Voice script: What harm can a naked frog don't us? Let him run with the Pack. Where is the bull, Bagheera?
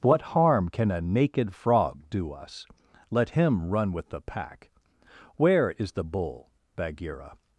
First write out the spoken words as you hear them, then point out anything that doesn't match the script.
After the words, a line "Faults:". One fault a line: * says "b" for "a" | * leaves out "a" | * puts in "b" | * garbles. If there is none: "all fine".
What harm can a naked frog do us? Let him run with the Pack. Where is the bull, Bagheera?
Faults:
* says "do" for "don't"